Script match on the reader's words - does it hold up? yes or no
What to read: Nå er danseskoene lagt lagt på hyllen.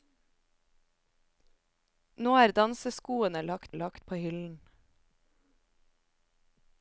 yes